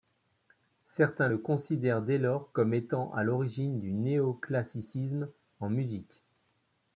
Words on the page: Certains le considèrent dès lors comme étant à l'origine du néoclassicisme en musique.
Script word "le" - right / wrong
right